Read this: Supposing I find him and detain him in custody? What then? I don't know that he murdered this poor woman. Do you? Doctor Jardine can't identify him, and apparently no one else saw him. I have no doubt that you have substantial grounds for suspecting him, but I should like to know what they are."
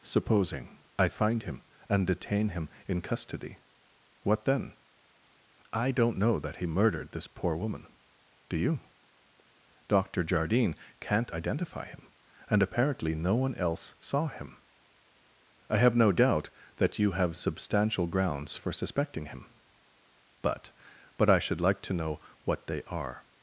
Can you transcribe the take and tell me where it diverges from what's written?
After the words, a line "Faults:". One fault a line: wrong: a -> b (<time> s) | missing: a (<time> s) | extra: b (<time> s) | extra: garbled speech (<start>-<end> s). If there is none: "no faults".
Supposing I find him and detain him in custody? What then? I don't know that he murdered this poor woman. Do you? Doctor Jardine can't identify him, and apparently no one else saw him. I have no doubt that you have substantial grounds for suspecting him, but but I should like to know what they are."
Faults:
extra: but (21.2 s)